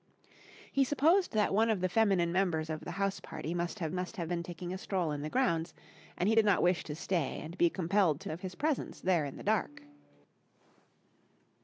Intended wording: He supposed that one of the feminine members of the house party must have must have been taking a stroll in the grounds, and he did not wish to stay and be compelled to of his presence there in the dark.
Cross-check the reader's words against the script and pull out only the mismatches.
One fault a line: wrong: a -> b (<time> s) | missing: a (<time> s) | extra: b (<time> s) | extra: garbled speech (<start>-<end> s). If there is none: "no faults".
no faults